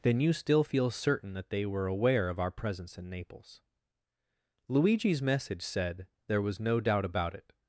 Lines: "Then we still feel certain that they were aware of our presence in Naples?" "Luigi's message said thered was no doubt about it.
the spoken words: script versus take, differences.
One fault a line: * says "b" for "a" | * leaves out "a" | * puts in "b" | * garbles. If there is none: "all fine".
* says "you" for "we"
* says "there" for "thered"